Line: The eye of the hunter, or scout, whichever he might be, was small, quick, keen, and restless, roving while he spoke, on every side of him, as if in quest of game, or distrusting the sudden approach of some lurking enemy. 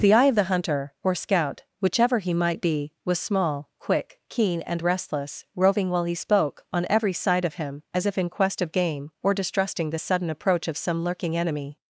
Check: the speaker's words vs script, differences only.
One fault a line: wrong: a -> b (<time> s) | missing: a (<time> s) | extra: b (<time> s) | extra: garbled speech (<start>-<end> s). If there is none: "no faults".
no faults